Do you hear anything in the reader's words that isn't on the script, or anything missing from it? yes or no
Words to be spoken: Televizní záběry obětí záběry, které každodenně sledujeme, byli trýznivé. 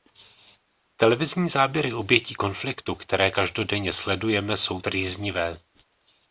yes